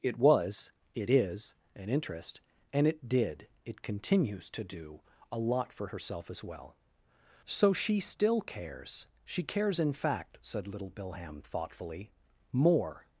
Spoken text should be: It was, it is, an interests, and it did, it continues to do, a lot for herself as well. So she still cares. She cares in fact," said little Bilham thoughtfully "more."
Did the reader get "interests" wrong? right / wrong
wrong